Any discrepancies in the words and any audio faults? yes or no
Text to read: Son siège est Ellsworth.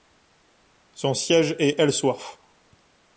no